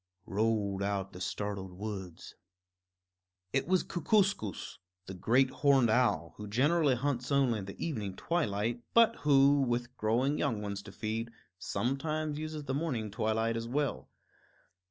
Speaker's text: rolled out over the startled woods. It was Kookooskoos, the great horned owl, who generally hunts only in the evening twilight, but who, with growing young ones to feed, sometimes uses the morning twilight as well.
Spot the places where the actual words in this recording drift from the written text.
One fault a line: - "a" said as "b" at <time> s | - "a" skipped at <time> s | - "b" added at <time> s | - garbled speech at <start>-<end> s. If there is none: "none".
- "over" skipped at 1.1 s